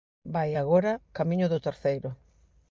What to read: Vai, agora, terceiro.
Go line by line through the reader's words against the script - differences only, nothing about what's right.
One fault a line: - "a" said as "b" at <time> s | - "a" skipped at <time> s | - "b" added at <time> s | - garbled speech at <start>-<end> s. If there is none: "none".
- "camiño do" added at 1.2 s